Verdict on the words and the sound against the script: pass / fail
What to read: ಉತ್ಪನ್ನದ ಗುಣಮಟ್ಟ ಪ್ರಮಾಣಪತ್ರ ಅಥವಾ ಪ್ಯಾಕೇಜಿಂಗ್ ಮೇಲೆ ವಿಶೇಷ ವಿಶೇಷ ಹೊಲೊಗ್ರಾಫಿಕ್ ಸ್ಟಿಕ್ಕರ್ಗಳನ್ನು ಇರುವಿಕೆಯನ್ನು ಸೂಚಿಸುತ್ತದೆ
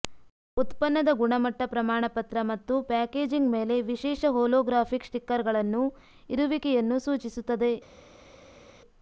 fail